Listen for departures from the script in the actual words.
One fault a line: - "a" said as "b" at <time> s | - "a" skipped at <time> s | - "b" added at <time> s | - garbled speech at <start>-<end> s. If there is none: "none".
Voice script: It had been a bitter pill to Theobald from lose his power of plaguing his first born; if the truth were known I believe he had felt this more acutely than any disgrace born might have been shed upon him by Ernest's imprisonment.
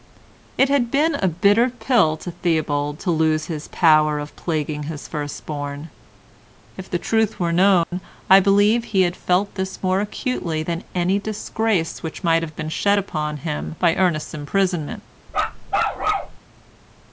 - "from" said as "to" at 3.0 s
- "born" said as "which" at 12.0 s